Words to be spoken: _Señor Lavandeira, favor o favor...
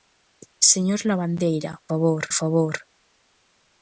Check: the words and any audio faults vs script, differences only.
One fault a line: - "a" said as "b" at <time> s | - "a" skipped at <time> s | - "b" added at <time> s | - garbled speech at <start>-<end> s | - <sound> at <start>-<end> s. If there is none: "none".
none